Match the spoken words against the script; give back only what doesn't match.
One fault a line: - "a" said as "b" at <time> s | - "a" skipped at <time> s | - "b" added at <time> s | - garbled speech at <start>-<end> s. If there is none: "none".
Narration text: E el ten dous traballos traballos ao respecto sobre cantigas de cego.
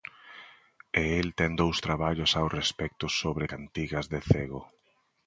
- "traballos" skipped at 2.3 s